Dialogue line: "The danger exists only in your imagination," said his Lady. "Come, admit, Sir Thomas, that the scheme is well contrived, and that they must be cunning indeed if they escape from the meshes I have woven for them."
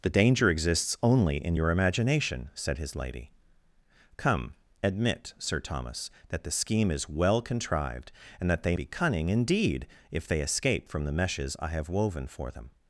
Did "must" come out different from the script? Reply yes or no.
yes